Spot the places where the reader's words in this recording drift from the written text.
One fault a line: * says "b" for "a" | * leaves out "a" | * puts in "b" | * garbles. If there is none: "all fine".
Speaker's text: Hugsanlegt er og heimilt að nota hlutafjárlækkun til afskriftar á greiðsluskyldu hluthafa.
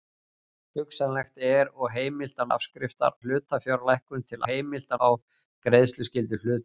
* says "afskriftar" for "nota"
* says "heimilt" for "afskriftar"